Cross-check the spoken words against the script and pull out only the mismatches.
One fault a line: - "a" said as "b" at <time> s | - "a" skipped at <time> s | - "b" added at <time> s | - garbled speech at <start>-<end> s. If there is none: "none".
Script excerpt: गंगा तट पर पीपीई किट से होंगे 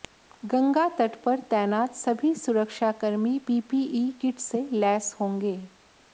- "तैनात सभी सुरक्षाकर्मी" added at 1.5 s
- "लैस" added at 4.7 s